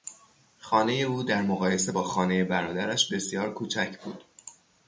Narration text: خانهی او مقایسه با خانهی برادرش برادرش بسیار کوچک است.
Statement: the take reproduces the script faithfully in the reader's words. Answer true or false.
false